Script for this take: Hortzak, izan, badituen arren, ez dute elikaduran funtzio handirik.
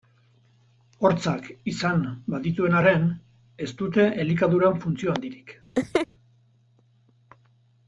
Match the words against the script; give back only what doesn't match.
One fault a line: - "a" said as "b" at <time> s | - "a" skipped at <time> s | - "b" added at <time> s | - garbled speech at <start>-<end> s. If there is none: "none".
none